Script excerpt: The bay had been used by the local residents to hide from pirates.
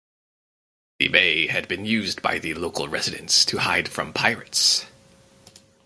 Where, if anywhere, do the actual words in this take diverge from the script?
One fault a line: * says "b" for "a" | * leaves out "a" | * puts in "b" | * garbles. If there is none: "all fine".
all fine